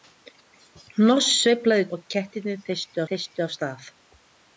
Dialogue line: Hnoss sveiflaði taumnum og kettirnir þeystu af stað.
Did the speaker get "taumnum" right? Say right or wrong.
wrong